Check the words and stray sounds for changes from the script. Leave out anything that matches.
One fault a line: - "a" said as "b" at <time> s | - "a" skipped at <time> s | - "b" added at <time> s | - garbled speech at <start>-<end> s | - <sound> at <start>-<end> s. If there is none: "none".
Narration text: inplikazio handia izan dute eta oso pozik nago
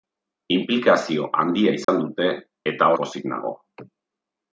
- dropout at 1.8-1.9 s
- "oso" skipped at 2.9 s